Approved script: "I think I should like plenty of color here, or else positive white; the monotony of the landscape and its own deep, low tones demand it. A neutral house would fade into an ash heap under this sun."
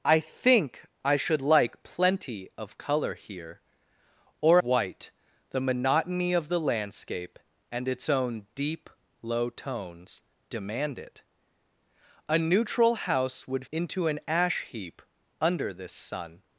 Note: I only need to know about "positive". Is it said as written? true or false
false